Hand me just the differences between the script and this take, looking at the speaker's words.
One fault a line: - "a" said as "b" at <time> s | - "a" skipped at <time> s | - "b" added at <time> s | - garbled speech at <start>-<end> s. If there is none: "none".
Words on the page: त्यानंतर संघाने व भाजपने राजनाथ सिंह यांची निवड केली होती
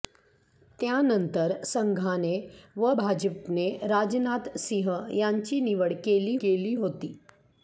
- "केली" added at 6.4 s